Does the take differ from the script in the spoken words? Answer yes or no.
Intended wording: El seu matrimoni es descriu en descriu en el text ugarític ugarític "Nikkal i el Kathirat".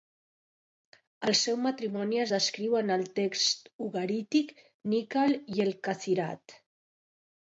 yes